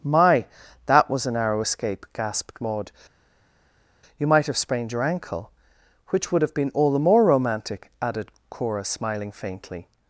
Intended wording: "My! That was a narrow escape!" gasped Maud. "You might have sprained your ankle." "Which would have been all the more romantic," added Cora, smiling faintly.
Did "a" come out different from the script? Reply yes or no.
no